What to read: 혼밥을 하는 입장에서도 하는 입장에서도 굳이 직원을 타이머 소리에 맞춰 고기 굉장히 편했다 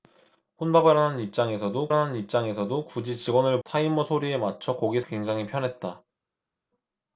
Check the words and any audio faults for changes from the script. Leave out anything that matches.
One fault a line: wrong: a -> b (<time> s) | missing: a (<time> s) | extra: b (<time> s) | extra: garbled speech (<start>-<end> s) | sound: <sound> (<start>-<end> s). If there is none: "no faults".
no faults